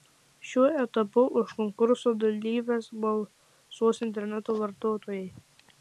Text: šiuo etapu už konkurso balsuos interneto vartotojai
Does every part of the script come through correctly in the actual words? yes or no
no